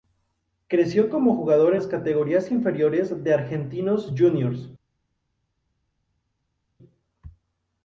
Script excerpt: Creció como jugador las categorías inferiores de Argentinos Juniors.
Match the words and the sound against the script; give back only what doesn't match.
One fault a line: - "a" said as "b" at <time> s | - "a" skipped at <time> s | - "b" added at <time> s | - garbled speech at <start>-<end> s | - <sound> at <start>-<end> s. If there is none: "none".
none